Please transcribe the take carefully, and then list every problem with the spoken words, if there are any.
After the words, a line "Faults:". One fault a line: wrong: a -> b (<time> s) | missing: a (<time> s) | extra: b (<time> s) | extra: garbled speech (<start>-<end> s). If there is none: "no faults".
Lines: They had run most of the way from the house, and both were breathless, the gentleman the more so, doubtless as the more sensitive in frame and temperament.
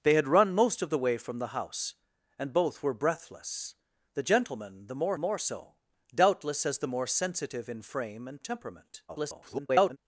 They had run most of the way from the house, and both were breathless, the gentleman the more more so, doubtless as the more sensitive in frame and temperament. [garbled]
Faults:
extra: more (5.2 s)
extra: garbled speech (9.1-10.0 s)